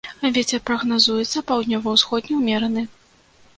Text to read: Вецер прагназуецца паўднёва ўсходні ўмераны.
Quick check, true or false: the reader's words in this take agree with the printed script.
true